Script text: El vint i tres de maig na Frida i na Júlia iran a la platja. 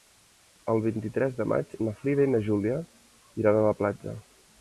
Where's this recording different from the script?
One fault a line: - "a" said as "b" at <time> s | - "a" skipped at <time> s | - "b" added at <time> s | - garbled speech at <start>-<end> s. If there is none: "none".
none